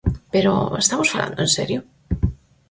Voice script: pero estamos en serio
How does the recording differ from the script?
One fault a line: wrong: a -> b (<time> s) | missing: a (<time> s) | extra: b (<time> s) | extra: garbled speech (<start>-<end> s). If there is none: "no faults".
extra: falando (1.1 s)